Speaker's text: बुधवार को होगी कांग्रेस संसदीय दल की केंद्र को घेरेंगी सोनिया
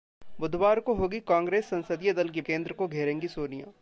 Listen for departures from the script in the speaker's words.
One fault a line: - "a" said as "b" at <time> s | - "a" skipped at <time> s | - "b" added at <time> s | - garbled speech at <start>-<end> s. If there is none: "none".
none